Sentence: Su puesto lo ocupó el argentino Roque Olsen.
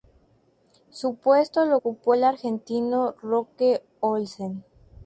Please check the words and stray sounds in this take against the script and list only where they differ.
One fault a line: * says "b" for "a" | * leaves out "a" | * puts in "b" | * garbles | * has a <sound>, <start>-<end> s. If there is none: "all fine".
all fine